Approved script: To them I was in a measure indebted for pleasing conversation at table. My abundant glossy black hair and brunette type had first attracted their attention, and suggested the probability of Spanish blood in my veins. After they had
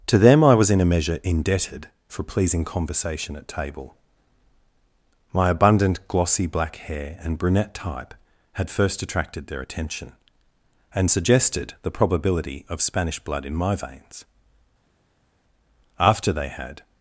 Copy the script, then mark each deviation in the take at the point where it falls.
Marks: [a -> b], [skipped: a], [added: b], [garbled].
To them I was in a measure indebted for pleasing conversation at table. My abundant glossy black hair and brunette type had first attracted their attention, and suggested the probability of Spanish blood in my veins. After they had